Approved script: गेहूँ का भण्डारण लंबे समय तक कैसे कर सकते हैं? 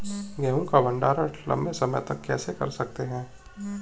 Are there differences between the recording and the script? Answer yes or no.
no